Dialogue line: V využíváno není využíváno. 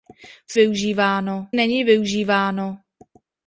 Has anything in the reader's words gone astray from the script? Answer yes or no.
no